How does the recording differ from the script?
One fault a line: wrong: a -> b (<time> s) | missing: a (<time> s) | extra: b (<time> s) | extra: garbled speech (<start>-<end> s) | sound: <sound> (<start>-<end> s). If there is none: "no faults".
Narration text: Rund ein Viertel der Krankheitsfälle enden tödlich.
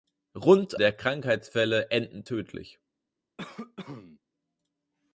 missing: ein Viertel (0.8 s)
sound: cough (3.4-4.2 s)